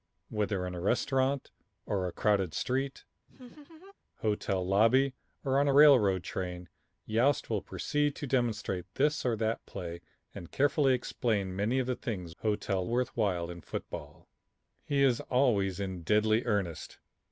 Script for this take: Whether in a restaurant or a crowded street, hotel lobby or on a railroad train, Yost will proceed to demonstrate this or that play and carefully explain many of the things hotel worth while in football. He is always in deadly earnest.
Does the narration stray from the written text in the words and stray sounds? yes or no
yes